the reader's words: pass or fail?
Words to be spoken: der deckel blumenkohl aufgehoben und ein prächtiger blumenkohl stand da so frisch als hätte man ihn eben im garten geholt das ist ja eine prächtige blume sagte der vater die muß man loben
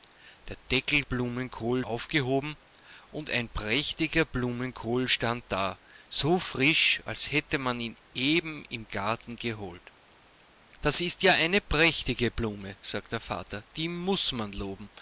pass